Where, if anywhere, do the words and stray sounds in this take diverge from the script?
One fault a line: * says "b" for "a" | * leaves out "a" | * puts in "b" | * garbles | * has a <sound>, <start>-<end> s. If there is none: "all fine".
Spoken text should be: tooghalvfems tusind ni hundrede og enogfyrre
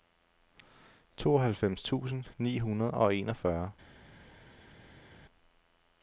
all fine